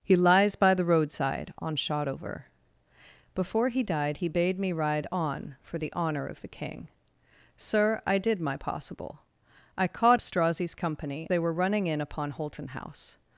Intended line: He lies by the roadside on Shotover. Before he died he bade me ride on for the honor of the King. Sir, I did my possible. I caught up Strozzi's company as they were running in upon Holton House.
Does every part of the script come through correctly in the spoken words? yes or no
no